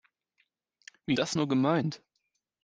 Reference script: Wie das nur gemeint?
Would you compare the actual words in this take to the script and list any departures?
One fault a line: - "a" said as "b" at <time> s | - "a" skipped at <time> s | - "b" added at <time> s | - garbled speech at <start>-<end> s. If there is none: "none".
none